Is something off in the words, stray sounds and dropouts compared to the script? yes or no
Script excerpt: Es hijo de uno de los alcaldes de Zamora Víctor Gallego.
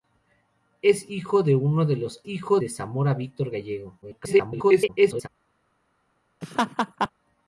yes